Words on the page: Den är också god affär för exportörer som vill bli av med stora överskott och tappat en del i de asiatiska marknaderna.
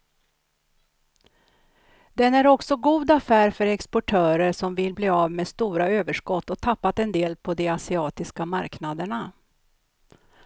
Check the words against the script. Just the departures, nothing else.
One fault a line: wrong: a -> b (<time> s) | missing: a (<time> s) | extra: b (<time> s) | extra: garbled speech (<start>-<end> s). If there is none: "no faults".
wrong: i -> på (7.4 s)